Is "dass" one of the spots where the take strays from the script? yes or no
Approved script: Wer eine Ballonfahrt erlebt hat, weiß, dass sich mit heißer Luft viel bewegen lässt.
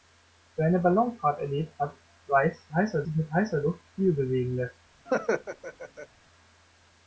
yes